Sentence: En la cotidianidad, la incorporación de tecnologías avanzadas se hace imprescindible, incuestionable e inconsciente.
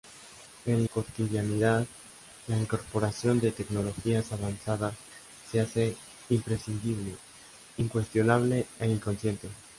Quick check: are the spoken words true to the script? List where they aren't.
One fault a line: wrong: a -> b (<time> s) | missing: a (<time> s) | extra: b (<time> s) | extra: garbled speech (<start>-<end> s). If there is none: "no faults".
missing: la (0.9 s)